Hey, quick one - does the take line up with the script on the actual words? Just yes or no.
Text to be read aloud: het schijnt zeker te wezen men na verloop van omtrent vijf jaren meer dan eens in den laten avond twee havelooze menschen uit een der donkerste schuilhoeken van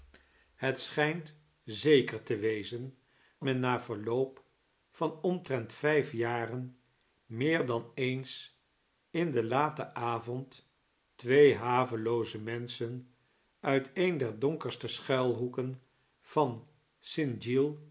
yes